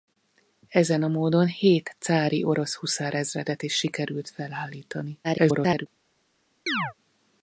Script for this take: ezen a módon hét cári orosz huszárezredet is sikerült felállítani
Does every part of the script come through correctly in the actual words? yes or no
no